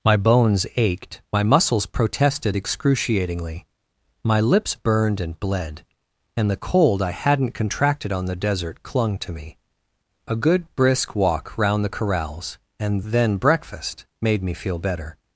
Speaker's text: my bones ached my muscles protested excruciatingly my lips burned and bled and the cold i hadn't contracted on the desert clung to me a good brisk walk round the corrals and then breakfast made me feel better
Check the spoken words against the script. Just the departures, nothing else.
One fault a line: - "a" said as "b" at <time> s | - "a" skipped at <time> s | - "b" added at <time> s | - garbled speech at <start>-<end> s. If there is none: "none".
none